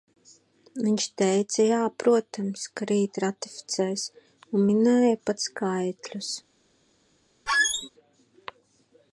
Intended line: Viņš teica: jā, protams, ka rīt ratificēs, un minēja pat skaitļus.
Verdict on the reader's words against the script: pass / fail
pass